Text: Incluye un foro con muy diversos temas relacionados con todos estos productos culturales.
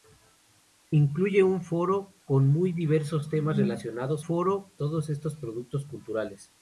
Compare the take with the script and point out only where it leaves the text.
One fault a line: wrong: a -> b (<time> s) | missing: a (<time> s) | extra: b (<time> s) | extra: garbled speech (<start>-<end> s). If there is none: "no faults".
wrong: con -> foro (4.2 s)